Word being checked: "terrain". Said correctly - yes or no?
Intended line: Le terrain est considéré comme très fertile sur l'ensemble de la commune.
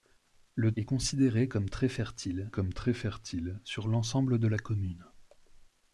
no